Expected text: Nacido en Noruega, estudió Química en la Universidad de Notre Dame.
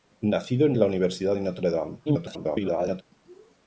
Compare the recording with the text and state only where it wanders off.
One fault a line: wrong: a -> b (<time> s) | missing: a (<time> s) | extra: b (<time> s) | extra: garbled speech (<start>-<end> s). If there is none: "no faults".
missing: Noruega estudió Química (0.8 s)
extra: garbled speech (2.1-3.0 s)